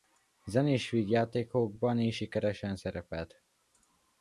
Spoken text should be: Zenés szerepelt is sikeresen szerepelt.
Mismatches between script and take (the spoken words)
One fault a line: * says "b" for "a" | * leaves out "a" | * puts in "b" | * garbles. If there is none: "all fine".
* says "vígjátékokban" for "szerepelt"